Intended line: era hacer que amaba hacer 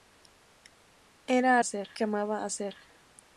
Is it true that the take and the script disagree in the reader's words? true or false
false